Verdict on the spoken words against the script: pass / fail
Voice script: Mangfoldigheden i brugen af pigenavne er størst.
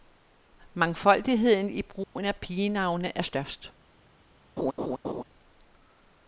pass